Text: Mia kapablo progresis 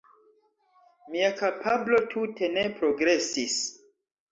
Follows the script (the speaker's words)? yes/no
no